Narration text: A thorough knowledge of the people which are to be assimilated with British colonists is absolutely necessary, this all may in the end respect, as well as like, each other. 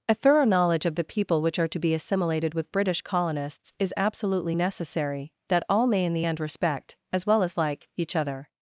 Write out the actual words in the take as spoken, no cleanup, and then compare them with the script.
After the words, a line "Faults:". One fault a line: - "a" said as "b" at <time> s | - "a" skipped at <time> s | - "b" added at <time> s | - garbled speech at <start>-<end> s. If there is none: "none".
A thorough knowledge of the people which are to be assimilated with British colonists is absolutely necessary, that all may in the end respect, as well as like, each other.
Faults:
- "this" said as "that" at 5.5 s